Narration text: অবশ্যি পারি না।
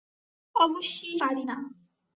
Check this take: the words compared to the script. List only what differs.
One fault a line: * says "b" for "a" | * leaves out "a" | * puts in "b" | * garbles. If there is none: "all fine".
all fine